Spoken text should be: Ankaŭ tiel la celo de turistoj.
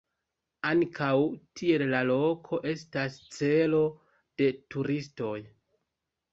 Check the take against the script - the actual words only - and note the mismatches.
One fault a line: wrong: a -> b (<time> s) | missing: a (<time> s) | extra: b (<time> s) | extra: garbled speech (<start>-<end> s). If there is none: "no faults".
extra: loko estas (2.1 s)